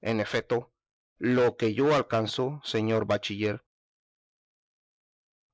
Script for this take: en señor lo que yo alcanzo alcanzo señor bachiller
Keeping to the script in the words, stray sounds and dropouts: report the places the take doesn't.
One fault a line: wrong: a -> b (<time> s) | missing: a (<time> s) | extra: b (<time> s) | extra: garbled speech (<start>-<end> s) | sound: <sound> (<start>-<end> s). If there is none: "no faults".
wrong: señor -> efeto (0.2 s)
missing: alcanzo (2.6 s)